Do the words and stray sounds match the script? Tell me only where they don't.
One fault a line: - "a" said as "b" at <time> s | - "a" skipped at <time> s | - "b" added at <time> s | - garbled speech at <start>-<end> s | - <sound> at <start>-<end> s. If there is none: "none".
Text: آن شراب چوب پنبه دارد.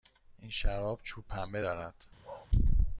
- "آن" said as "این" at 0.4 s
- bark at 2.2-2.5 s